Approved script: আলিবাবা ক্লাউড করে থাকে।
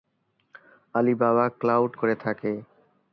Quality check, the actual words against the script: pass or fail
pass